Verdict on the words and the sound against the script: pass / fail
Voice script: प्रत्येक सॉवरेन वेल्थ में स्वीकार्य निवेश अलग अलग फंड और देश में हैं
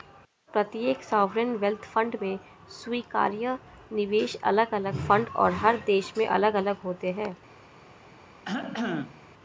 fail